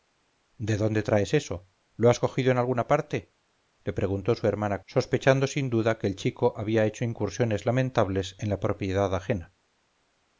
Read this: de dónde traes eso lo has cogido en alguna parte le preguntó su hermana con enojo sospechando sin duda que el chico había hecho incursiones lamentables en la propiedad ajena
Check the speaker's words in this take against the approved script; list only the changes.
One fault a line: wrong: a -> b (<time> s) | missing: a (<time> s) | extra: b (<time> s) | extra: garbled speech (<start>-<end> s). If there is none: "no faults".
missing: con enojo (4.8 s)